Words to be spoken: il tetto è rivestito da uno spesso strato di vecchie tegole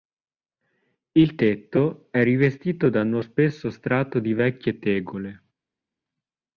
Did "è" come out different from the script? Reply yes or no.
no